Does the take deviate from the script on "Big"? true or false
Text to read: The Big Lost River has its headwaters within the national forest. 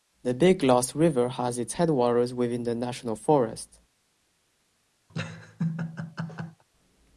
false